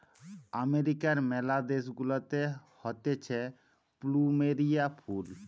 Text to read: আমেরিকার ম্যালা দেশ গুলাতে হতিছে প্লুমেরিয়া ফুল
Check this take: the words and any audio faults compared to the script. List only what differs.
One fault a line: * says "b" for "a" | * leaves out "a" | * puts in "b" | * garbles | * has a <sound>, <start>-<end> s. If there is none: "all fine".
all fine